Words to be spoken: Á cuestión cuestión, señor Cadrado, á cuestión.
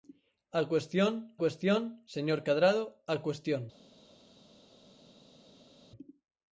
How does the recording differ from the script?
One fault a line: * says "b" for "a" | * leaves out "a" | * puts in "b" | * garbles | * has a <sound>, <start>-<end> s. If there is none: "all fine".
all fine